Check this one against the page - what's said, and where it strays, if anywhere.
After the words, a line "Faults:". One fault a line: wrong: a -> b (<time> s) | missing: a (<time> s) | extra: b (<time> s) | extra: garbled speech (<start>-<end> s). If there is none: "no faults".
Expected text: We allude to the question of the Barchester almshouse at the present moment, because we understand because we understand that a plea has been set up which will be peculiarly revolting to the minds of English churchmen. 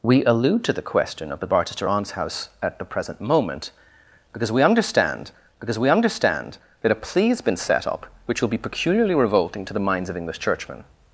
We allude to the question of the Barchester almshouse at the present moment, because we understand because we understand that a plea has been set up which will be peculiarly revolting to the minds of English churchmen.
Faults:
no faults